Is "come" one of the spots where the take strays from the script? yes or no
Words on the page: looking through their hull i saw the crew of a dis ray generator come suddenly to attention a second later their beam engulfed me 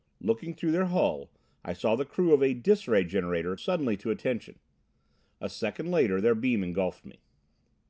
yes